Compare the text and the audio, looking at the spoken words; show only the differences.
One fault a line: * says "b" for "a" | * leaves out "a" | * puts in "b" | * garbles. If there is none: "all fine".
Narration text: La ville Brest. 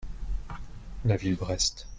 all fine